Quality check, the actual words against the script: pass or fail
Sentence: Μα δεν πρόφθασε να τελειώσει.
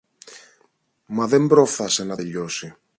pass